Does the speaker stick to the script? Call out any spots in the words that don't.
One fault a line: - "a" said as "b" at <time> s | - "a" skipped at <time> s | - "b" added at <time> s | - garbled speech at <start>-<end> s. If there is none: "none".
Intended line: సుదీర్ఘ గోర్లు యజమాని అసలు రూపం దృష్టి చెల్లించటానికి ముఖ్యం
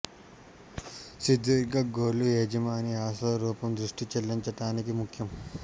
none